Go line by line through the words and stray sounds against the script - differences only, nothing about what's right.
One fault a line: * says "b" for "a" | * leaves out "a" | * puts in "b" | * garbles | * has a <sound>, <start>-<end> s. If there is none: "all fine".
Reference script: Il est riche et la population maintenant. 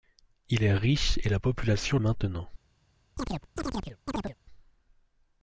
* has a chirp, 3.2-4.4 s